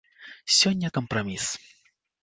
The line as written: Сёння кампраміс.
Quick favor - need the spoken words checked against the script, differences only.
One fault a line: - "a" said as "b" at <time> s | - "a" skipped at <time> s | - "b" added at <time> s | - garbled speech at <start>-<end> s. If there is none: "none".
none